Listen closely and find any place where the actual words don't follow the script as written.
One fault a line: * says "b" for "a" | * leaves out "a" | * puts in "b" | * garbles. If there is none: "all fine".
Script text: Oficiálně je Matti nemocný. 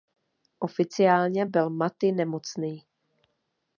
* says "byl" for "je"